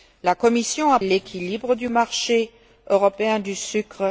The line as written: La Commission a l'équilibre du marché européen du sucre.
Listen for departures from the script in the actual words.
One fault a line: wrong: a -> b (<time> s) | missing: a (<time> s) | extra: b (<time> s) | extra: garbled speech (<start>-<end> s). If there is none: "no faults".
no faults